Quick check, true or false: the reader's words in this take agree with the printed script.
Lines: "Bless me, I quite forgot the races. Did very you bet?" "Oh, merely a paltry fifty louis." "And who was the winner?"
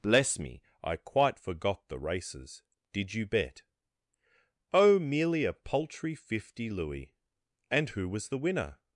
false